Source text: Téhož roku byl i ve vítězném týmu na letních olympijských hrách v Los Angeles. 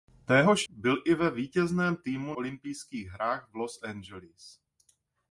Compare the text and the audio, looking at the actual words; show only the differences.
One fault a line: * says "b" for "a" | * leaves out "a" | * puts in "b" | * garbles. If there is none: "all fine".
* leaves out "roku"
* leaves out "na letních"